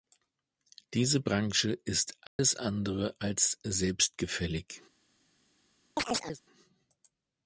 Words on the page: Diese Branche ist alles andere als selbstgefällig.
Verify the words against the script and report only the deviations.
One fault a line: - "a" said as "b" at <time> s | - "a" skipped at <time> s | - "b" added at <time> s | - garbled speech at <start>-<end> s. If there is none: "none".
none